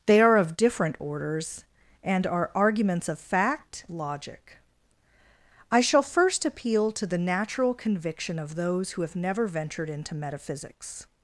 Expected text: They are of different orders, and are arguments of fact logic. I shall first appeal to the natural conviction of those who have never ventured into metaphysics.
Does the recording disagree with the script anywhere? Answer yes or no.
no